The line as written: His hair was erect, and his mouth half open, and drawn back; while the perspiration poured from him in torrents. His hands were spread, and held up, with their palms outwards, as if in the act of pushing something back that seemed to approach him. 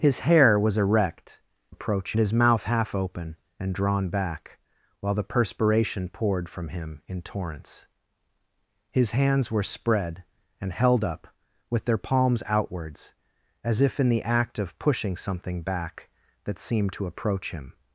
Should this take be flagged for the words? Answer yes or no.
yes